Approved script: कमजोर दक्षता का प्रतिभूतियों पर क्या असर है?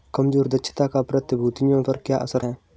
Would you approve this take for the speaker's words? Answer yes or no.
yes